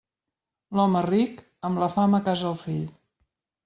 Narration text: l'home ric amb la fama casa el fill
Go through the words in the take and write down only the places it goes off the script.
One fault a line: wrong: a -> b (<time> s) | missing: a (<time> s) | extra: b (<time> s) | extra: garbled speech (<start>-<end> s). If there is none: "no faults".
no faults